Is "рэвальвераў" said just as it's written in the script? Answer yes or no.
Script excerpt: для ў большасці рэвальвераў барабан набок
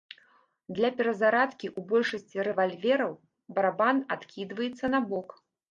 yes